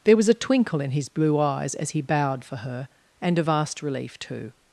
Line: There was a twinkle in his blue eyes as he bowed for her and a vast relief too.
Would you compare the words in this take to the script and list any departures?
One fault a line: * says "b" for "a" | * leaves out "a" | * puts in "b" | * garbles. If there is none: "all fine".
all fine